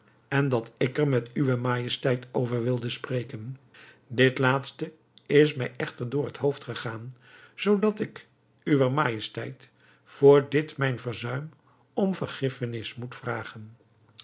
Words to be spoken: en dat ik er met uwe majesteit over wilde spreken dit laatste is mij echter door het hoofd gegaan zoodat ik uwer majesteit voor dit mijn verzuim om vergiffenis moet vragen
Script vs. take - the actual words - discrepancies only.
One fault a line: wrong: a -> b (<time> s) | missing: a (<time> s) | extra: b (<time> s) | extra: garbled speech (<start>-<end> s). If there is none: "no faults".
no faults